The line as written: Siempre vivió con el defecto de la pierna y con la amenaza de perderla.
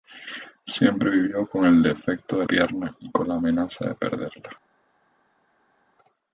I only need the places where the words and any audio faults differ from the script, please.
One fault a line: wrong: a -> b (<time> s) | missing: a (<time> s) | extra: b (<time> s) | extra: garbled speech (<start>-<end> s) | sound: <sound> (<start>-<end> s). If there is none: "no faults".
missing: la (2.5 s)